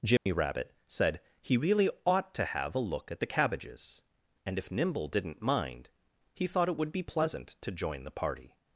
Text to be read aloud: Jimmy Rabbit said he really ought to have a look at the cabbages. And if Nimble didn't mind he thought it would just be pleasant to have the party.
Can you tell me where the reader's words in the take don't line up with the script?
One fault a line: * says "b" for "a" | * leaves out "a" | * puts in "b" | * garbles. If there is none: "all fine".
* leaves out "just"
* says "join" for "have"